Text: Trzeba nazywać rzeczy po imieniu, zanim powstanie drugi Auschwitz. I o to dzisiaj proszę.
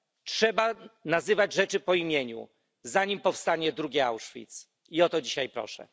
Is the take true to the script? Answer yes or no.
yes